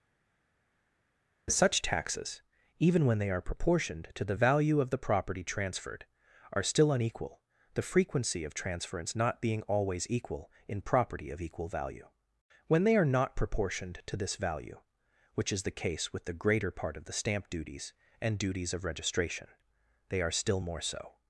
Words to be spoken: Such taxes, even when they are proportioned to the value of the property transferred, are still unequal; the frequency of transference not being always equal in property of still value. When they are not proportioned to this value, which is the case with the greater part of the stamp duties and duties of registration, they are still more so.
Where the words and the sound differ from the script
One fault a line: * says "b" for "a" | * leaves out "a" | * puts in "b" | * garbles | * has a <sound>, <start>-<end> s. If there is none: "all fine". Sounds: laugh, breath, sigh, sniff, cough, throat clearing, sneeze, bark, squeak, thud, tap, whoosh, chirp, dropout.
* says "equal" for "still"